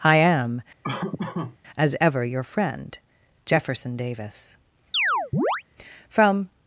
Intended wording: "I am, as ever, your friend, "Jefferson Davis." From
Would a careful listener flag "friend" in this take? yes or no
no